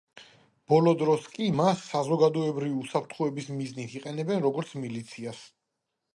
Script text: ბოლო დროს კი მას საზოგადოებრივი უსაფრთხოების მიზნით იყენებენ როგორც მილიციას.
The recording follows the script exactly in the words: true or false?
true